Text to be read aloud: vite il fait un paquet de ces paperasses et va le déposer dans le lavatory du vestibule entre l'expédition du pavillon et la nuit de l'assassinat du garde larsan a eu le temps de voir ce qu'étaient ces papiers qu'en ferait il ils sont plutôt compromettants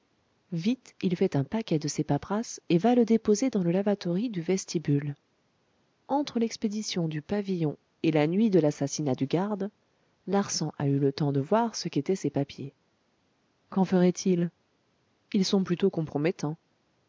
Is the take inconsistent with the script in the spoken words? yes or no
no